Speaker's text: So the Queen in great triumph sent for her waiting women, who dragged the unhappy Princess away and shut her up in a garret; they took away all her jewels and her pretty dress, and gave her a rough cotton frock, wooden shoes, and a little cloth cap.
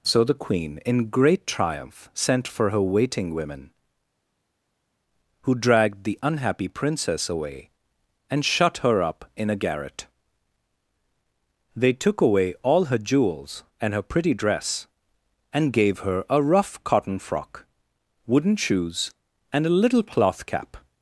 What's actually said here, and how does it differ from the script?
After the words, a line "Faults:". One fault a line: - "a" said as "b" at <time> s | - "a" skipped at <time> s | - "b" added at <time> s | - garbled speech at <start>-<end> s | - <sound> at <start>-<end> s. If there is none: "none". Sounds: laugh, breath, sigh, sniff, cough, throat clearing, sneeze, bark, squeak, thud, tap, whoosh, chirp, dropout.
So the Queen in great triumph sent for her waiting women, who dragged the unhappy Princess away and shut her up in a garret; they took away all her jewels and her pretty dress, and gave her a rough cotton frock, wooden shoes, and a little cloth cap.
Faults:
none